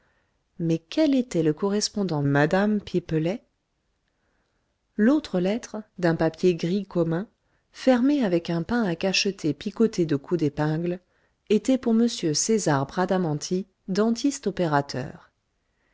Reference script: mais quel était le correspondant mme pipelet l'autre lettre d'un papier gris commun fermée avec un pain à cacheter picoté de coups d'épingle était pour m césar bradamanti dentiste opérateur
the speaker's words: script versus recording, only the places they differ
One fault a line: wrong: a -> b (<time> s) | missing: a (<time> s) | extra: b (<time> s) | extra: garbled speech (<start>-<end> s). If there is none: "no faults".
no faults